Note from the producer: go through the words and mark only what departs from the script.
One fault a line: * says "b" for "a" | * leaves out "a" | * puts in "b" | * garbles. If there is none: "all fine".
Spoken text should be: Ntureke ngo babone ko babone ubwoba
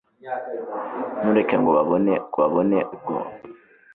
all fine